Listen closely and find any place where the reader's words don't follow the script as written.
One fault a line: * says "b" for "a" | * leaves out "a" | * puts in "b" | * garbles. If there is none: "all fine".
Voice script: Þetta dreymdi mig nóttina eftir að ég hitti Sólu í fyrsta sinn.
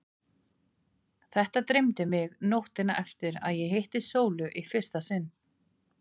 all fine